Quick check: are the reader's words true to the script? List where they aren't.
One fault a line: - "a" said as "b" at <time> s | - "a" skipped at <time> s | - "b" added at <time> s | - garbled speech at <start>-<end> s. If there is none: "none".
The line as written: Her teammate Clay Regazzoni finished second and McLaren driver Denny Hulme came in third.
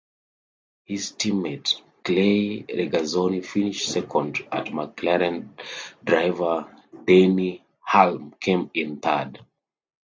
- "Her" said as "His" at 0.8 s